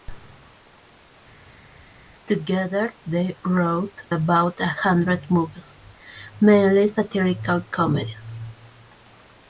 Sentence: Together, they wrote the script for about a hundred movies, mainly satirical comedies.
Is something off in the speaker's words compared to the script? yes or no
yes